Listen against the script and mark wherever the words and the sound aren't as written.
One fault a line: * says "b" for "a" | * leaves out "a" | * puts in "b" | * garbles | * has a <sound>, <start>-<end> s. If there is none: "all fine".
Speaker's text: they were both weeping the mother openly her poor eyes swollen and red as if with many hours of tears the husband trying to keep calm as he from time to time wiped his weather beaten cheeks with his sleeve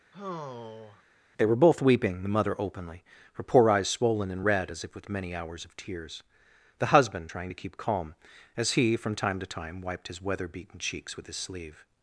* has a sigh, 0.1-1.0 s